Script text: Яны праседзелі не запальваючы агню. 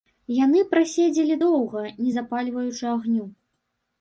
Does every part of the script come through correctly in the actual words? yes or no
no